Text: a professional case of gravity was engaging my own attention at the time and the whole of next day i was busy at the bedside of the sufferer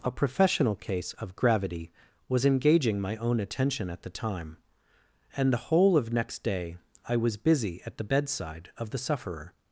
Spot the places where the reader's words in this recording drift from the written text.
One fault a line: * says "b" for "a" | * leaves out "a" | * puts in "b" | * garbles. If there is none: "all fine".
all fine